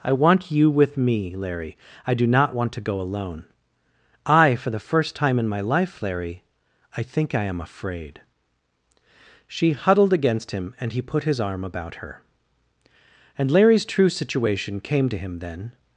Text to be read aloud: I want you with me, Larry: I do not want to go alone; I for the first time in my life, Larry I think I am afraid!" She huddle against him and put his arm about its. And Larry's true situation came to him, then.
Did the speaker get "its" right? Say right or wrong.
wrong